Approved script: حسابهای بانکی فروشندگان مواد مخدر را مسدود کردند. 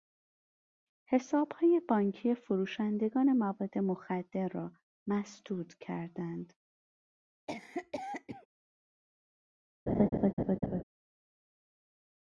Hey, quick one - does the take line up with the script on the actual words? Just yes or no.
yes